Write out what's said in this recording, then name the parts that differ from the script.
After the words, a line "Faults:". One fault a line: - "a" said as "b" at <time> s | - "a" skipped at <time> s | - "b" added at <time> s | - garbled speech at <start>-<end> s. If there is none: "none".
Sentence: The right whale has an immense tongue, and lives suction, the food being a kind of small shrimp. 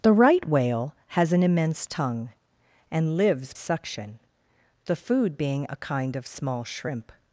The right whale has an immense tongue, and lives suction, the food being a kind of small shrimp.
Faults:
none